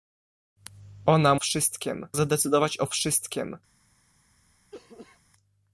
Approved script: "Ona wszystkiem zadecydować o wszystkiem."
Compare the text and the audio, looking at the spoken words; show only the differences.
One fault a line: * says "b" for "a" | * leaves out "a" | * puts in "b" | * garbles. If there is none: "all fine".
all fine